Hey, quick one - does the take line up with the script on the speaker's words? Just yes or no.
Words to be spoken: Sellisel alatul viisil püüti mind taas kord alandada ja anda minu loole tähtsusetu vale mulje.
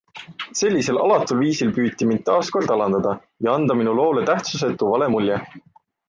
yes